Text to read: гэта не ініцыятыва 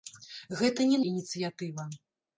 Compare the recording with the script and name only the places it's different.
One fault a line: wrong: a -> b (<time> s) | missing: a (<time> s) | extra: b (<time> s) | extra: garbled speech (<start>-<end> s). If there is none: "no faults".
no faults